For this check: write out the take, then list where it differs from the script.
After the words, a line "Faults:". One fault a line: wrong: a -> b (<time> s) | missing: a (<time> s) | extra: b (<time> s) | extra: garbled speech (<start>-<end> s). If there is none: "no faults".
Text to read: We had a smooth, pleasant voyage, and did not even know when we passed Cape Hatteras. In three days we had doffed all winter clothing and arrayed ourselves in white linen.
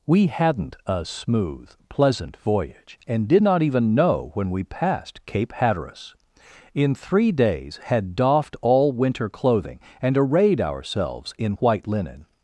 We hadn't a smooth, pleasant voyage, and did not even know when we passed Cape Hatteras. In three days had doffed all winter clothing and arrayed ourselves in white linen.
Faults:
wrong: had -> hadn't (0.3 s)
missing: we (7.8 s)